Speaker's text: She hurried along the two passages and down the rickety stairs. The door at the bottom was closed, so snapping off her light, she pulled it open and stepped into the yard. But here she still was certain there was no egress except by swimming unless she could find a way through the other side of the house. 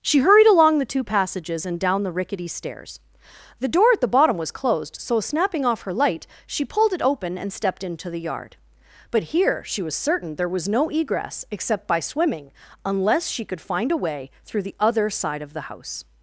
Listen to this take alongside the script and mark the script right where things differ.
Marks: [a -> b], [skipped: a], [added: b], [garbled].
She hurried along the two passages and down the rickety stairs. The door at the bottom was closed, so snapping off her light, she pulled it open and stepped into the yard. But here she [skipped: still] was certain there was no egress except by swimming unless she could find a way through the other side of the house.